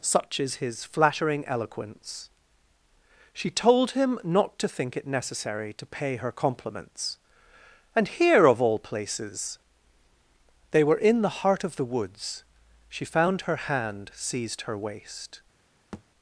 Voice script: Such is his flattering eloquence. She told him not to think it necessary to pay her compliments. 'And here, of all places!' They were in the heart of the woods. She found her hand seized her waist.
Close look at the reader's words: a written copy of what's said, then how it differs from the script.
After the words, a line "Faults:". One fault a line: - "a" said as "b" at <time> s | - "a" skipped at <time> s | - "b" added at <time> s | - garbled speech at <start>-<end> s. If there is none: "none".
Such is his flattering eloquence. She told him not to think it necessary to pay her compliments. 'And here, of all places!' They were in the heart of the woods. She found her hand seized her waist.
Faults:
none